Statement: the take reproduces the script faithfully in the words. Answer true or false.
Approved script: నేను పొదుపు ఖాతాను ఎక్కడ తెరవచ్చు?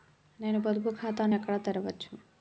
true